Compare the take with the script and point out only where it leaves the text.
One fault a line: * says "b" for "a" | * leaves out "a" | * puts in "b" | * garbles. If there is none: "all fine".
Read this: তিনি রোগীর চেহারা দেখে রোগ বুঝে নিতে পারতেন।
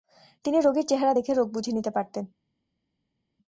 all fine